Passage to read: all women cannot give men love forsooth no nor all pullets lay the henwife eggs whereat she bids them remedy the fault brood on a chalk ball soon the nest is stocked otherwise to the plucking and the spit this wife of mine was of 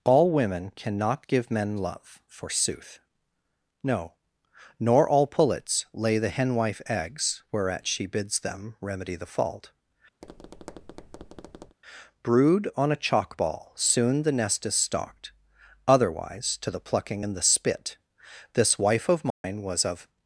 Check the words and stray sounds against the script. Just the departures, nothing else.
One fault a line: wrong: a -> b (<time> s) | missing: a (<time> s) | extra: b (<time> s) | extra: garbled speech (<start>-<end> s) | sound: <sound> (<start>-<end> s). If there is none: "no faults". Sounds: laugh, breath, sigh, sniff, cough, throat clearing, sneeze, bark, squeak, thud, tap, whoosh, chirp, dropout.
sound: tap (10.2-11.8 s)
sound: dropout (19.3-19.4 s)